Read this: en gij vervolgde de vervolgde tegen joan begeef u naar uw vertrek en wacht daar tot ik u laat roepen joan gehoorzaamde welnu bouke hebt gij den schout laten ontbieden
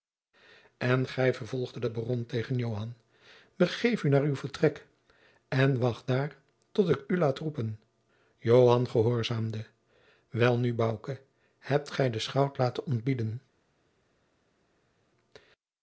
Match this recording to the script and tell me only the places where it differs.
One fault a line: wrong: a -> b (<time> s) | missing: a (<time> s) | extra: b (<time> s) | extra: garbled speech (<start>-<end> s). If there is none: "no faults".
wrong: vervolgde -> baron (1.9 s)